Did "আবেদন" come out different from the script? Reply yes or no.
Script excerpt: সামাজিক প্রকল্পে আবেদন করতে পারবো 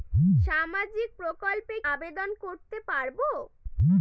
no